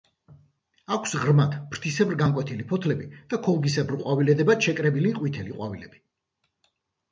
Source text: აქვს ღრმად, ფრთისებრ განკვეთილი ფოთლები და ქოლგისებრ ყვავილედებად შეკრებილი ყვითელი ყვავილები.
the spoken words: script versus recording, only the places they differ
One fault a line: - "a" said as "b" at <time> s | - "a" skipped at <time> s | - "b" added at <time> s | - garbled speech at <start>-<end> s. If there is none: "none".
none